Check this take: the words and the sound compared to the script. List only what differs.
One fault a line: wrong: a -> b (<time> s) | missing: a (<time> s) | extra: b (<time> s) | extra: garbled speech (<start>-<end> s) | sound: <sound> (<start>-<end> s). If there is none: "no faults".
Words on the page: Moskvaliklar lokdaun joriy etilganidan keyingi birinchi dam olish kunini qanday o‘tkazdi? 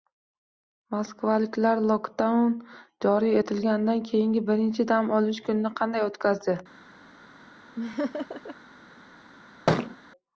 sound: laugh (7.8-8.6 s)
sound: thud (9.7-10.0 s)